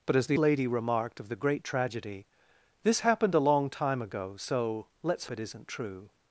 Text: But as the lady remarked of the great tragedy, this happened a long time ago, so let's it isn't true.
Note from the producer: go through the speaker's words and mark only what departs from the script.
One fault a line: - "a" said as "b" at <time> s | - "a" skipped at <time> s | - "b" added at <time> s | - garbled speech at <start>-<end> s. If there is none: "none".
none